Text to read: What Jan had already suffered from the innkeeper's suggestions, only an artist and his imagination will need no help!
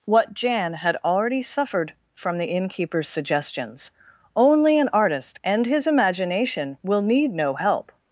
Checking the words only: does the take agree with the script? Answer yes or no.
yes